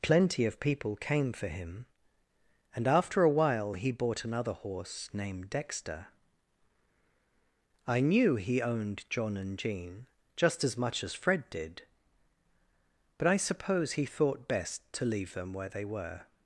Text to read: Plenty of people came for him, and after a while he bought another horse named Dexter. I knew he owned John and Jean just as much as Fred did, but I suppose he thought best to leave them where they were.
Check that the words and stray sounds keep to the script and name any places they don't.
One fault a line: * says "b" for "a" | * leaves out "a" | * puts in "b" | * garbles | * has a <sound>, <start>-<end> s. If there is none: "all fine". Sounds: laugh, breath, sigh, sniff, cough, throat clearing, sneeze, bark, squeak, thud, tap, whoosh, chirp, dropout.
all fine